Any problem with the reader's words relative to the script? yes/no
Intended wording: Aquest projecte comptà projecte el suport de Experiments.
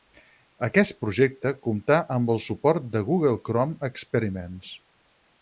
yes